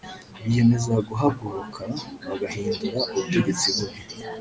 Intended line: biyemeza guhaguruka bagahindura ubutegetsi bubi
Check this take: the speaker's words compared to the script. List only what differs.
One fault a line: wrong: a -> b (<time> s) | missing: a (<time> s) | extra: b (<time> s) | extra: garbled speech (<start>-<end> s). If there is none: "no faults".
no faults